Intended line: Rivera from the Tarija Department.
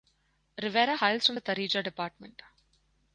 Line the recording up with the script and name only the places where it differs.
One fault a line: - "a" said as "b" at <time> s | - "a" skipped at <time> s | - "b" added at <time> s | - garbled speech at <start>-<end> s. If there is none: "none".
- "hails" added at 0.9 s